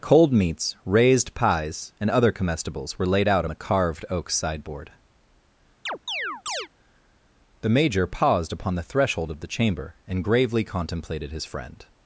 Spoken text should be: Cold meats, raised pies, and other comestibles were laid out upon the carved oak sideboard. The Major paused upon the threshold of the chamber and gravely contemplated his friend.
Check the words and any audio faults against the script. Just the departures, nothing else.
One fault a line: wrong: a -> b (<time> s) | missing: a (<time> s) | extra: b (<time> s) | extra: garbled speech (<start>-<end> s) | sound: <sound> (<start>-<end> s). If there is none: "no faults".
missing: upon (3.5 s)
sound: chirp (5.9-6.7 s)